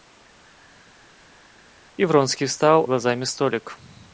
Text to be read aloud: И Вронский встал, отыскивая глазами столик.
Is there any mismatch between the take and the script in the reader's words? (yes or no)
yes